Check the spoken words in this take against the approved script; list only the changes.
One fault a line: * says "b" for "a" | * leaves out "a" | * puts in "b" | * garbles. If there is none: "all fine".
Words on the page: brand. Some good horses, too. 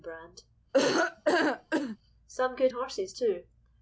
all fine